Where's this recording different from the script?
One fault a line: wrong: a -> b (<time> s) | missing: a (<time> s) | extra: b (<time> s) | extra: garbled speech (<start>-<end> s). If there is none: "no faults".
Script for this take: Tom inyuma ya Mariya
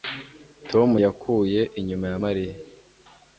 extra: yakuye (1.0 s)